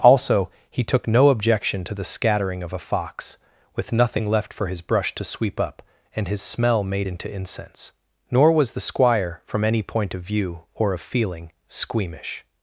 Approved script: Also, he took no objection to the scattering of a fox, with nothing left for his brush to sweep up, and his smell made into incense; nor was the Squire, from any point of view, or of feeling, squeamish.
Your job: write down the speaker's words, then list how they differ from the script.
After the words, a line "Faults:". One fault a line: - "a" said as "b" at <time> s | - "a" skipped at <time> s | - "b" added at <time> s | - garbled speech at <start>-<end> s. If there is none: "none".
Also, he took no objection to the scattering of a fox, with nothing left for his brush to sweep up, and his smell made into incense; nor was the Squire, from any point of view, or of feeling, squeamish.
Faults:
none